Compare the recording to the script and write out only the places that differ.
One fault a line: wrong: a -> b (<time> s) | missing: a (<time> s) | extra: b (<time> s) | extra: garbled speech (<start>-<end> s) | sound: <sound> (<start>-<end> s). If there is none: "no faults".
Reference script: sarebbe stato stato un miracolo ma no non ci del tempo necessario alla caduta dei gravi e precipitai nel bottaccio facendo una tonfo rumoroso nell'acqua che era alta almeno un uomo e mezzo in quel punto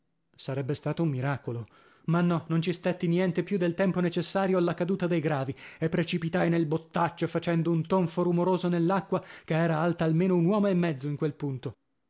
missing: stato (1.0 s)
extra: stetti niente più (2.7 s)
wrong: una -> un (7.7 s)